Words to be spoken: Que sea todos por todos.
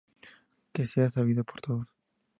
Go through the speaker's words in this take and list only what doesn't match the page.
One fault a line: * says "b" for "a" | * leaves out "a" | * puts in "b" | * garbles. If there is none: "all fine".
* says "sabido" for "todos"